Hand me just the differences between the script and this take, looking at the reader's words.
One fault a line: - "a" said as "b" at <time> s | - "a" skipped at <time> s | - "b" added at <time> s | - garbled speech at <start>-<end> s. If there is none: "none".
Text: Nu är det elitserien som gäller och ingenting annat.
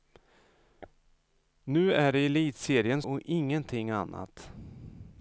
- "som gäller" skipped at 3.0 s